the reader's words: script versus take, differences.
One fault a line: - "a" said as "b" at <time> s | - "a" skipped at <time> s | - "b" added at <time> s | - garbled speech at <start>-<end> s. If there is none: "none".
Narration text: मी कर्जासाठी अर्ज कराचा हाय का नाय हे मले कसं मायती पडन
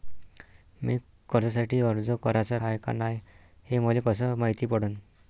none